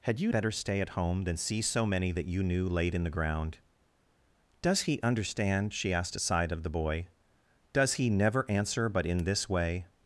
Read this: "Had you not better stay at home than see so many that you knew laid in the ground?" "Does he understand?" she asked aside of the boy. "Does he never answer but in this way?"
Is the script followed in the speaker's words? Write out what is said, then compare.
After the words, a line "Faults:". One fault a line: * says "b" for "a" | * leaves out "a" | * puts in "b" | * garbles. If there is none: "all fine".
"Had you better stay at home than see so many that you knew laid in the ground?" "Does he understand?" she asked aside of the boy. "Does he never answer but in this way?"
Faults:
* leaves out "not"